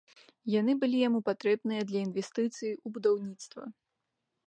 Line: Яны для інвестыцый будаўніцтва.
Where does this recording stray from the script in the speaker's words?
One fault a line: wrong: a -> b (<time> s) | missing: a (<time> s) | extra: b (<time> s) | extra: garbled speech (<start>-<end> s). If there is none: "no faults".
extra: былі яму патрэбныя (0.8 s)
extra: у (2.9 s)